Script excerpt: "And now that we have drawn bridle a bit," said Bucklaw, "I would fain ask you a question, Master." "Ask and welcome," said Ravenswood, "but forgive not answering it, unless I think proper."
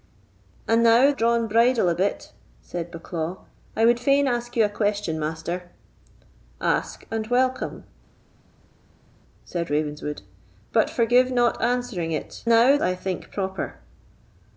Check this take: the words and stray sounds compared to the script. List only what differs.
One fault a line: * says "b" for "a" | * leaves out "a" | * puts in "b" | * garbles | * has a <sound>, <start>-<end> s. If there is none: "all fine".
* leaves out "that we have"
* says "now" for "unless"